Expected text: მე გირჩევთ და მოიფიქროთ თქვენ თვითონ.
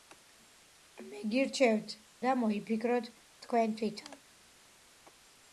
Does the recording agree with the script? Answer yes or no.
yes